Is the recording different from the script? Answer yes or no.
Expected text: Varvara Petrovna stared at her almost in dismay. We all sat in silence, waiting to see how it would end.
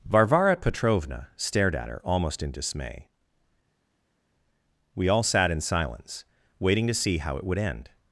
no